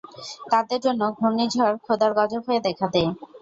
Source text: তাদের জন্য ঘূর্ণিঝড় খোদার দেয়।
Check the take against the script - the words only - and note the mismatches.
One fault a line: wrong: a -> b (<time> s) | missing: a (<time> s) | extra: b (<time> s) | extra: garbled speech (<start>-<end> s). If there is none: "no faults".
extra: গজব হয়ে দেখা (2.2 s)